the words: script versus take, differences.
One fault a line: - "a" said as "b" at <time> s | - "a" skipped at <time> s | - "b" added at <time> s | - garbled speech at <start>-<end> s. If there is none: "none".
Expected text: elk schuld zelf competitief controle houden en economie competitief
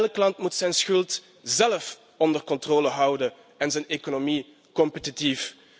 - "land moet zijn" added at 0.2 s
- "competitief" said as "onder" at 2.2 s
- "zijn" added at 3.7 s